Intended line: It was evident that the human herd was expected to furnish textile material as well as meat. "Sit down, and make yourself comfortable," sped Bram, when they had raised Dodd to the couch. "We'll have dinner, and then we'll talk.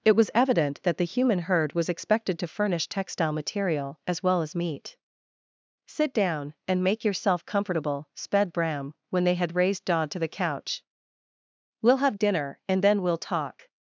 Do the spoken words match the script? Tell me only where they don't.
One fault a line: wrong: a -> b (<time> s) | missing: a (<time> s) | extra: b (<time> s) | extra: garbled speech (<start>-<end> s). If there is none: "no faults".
no faults